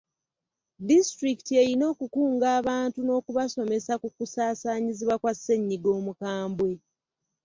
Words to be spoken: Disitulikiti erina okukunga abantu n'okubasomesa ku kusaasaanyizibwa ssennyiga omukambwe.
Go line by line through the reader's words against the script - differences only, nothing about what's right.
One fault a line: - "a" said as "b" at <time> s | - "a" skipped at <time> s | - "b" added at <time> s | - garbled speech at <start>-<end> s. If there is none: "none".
- "kwa" added at 5.2 s